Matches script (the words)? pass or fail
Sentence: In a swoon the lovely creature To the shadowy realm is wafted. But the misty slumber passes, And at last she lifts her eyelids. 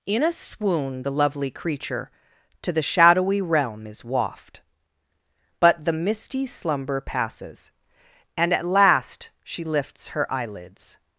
fail